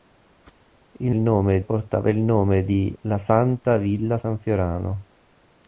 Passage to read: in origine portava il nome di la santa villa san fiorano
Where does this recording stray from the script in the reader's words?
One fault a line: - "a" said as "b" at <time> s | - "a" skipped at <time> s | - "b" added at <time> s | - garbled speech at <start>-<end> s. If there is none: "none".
- "origine" said as "nome" at 1.1 s